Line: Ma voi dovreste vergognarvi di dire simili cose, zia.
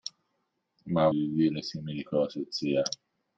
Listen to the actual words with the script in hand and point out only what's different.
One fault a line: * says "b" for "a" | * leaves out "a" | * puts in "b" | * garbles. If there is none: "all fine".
* leaves out "voi dovreste vergognarvi"